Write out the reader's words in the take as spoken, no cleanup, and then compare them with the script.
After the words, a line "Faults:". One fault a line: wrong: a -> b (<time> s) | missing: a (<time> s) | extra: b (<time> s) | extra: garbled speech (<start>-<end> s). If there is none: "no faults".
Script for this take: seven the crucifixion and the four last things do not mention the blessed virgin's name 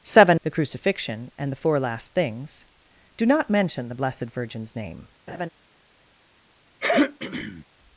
seven the crucifixion and the four last things do not mention the blessed virgin's name
Faults:
no faults